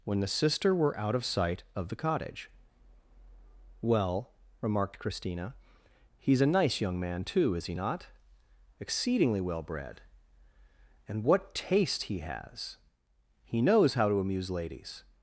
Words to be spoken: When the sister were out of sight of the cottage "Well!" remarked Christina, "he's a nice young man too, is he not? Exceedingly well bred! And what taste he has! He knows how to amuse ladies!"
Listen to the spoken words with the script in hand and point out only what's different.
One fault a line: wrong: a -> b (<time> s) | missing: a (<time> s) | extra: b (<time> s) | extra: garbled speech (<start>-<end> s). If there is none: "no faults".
no faults